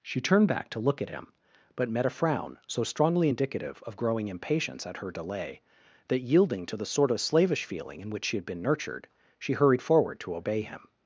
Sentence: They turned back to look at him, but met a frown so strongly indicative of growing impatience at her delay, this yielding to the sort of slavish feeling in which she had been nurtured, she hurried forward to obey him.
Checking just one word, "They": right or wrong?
wrong